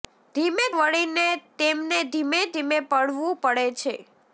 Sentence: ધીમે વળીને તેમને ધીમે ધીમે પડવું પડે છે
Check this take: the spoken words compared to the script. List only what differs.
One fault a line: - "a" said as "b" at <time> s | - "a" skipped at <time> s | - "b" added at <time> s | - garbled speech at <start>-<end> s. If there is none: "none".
none